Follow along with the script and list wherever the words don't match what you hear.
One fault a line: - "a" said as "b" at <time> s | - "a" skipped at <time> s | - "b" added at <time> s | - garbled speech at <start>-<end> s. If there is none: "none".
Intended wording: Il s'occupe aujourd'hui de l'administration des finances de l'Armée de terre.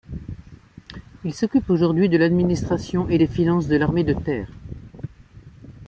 - "et" added at 3.1 s